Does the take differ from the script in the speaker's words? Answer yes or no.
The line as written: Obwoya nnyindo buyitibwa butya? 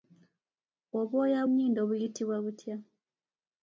no